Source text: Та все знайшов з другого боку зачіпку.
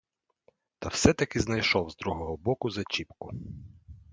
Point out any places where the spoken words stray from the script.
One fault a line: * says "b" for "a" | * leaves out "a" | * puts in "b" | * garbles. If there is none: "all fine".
* puts in "таки"